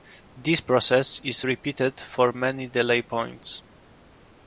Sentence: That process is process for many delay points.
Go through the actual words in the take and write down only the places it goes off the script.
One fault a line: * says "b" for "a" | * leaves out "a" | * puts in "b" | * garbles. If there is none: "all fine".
* says "This" for "That"
* says "repeated" for "process"